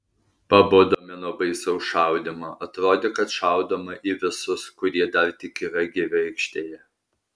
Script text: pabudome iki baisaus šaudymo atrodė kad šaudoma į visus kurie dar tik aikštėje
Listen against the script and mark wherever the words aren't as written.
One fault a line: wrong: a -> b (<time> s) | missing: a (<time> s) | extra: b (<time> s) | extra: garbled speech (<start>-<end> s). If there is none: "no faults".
wrong: iki -> nuo (1.2 s)
extra: yra gyvi (5.7 s)